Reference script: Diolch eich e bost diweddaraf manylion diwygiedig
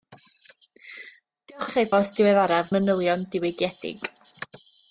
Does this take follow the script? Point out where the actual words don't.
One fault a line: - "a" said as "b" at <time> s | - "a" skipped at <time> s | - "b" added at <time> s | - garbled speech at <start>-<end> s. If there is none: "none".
none